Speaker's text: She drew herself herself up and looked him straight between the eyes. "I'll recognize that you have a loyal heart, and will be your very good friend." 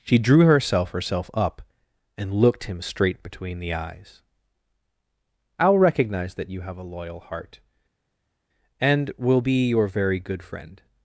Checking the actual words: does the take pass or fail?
pass